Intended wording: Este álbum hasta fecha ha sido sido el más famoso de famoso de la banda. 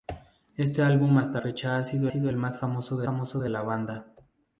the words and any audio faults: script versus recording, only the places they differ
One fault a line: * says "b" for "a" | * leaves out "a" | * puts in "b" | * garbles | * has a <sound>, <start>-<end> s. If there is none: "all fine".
all fine